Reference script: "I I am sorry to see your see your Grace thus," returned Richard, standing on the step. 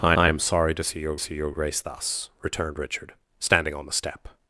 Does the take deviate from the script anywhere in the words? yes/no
no